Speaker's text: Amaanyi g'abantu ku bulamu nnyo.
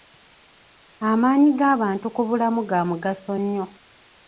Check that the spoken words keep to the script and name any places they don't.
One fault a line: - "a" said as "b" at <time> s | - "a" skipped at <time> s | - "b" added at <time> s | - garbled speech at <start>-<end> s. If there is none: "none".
- "ga mugaso" added at 2.7 s